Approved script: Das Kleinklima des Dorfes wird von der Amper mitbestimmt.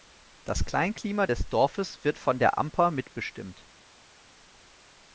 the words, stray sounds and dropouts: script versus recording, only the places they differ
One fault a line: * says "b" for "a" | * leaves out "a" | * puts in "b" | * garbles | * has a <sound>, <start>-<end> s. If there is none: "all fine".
all fine